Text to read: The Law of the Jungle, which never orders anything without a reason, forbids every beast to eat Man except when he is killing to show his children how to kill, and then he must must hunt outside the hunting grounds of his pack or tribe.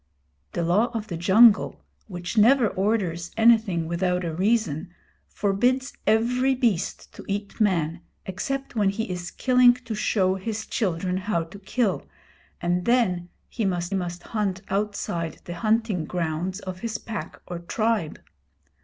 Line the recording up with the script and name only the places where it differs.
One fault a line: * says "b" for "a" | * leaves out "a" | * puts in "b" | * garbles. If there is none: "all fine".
all fine